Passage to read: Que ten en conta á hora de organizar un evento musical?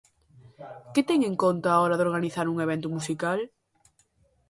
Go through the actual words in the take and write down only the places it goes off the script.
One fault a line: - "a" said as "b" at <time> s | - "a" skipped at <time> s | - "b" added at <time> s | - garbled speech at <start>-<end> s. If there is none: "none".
none